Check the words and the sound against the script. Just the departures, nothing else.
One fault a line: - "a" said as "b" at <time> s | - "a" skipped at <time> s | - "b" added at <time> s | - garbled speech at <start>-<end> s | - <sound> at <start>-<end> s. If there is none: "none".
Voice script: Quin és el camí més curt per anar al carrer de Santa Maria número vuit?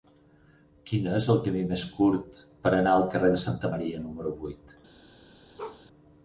- bark at 5.6-5.8 s